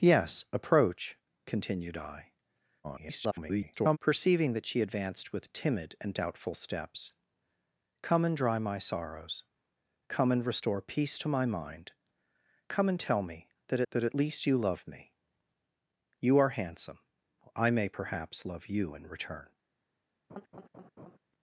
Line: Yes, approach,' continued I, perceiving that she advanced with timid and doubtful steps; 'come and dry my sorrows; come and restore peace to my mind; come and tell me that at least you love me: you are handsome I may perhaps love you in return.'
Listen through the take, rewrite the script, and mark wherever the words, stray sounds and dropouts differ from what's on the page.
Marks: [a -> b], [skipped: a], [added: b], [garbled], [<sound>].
Yes, approach,' continued I, [garbled] perceiving that she advanced with timid and doubtful steps; 'come and dry my sorrows; come and restore peace to my mind; come and tell me that [added: that] at least you love me: you are handsome I may perhaps love you in return.' [laugh]